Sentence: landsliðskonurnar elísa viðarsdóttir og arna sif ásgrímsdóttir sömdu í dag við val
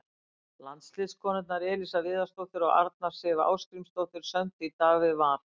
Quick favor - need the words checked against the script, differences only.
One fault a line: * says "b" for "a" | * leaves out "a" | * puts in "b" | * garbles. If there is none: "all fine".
all fine